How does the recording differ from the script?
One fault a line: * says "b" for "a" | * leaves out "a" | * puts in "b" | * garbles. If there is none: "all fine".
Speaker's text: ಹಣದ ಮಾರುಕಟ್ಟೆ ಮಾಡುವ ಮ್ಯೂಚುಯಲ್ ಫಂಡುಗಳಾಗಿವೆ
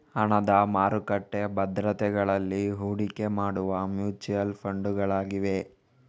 * puts in "ಭದ್ರತೆಗಳಲ್ಲಿ ಹೂಡಿಕೆ"